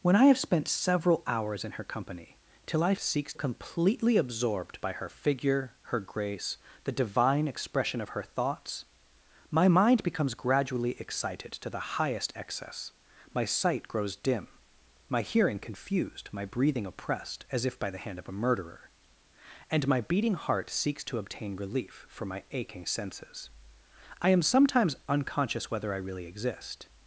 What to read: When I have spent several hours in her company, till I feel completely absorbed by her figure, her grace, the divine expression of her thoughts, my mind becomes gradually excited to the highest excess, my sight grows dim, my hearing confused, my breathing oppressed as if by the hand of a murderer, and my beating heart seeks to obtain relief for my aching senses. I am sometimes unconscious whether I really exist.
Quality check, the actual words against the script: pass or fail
fail